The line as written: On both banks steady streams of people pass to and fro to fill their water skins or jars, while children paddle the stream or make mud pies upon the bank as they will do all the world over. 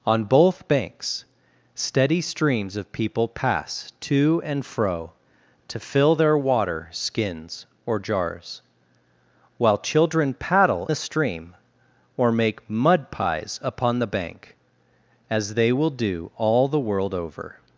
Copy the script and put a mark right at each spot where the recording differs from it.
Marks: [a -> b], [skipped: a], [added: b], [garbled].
On both banks steady streams of people pass to and fro to fill their water skins or jars, while children paddle the stream or make mud pies upon the bank as they will do all the world over.